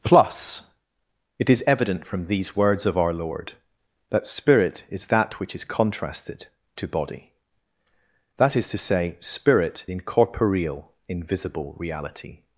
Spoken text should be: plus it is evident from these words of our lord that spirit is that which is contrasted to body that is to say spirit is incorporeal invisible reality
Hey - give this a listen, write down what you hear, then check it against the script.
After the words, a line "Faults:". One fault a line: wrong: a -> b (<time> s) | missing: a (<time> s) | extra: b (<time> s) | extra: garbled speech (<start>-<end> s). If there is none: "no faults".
plus it is evident from these words of our lord that spirit is that which is contrasted to body that is to say spirit incorporeal invisible reality
Faults:
missing: is (9.9 s)